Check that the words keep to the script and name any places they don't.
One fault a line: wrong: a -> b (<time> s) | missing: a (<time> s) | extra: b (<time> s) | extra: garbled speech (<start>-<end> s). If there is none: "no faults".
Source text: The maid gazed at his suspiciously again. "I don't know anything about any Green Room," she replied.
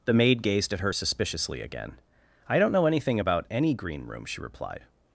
wrong: his -> her (0.8 s)